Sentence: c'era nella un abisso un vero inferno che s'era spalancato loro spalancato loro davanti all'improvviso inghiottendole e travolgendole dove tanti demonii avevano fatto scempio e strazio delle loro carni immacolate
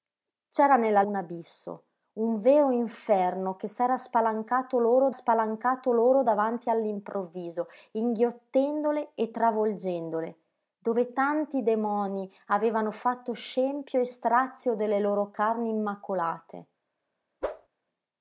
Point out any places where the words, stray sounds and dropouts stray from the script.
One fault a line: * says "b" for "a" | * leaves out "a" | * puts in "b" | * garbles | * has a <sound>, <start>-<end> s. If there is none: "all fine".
* has a whoosh, 17.4-17.7 s